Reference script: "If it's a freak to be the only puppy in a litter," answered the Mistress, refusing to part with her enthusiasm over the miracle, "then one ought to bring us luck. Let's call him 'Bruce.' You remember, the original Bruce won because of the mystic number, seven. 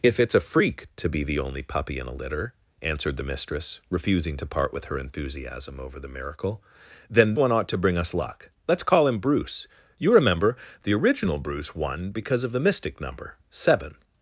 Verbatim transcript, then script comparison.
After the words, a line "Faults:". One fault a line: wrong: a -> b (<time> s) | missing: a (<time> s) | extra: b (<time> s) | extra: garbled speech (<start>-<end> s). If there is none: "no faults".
"If it's a freak to be the only puppy in a litter," answered the Mistress, refusing to part with her enthusiasm over the miracle, "then one ought to bring us luck. Let's call him 'Bruce.' You remember, the original Bruce won because of the mystic number, seven.
Faults:
no faults